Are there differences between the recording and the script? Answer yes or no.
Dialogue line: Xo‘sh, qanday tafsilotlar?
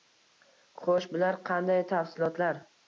yes